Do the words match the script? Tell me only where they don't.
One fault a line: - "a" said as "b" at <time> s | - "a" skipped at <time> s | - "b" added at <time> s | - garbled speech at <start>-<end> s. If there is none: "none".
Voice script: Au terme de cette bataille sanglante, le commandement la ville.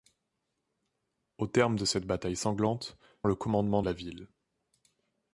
none